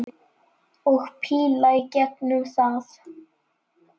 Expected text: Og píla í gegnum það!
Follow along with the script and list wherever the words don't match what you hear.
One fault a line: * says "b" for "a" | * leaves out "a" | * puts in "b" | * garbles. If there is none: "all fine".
all fine